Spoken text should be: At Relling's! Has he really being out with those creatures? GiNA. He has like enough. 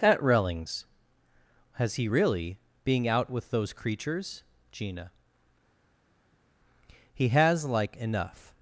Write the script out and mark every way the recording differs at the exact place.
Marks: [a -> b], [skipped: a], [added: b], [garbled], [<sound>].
At Relling's! Has he really being out with those creatures? GiNA. He has like enough.